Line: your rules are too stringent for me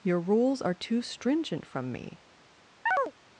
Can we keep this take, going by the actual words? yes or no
no